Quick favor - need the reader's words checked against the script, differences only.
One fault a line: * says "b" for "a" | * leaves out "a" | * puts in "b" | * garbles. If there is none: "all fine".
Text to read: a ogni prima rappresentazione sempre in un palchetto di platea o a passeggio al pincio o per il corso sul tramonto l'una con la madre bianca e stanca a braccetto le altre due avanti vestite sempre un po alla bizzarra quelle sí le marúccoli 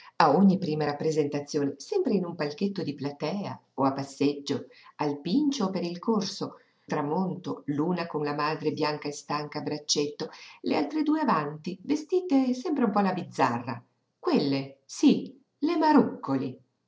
* leaves out "sul"